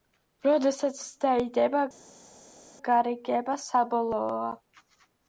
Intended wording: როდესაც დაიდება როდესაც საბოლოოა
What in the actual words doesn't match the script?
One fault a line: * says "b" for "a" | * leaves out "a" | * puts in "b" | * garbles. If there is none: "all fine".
* says "გარიგება" for "როდესაც"